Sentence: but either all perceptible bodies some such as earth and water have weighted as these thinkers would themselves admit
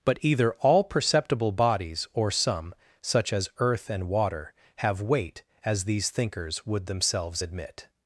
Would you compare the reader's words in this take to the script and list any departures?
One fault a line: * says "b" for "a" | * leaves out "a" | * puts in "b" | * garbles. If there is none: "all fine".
* puts in "or"
* says "weight" for "weighted"